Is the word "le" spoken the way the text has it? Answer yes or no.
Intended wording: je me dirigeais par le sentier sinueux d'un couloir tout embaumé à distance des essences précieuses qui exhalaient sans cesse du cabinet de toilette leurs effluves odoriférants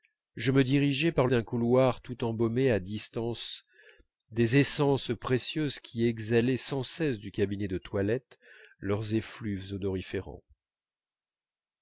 no